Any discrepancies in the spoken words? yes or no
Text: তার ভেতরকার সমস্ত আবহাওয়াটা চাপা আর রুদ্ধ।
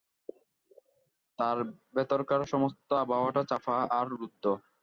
no